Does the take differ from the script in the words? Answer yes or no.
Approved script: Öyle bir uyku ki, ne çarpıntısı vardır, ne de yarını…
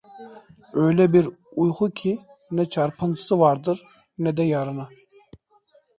no